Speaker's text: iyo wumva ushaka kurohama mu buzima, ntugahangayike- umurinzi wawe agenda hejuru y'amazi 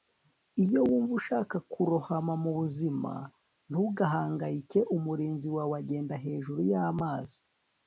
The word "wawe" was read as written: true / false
true